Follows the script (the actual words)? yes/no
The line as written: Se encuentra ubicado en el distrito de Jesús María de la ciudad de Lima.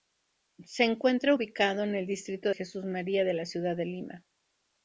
no